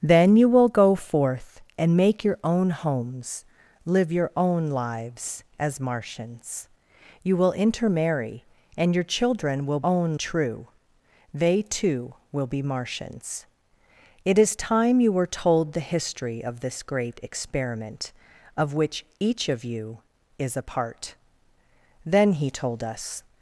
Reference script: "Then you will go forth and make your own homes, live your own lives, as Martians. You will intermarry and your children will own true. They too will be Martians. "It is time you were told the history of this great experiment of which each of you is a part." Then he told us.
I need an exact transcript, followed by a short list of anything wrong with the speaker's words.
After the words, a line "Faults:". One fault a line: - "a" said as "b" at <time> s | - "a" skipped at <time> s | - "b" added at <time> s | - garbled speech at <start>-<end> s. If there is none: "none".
"Then you will go forth and make your own homes, live your own lives, as Martians. You will intermarry and your children will own true. They too will be Martians. "It is time you were told the history of this great experiment of which each of you is a part." Then he told us.
Faults:
none